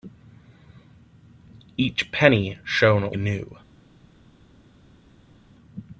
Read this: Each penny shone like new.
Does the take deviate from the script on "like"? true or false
true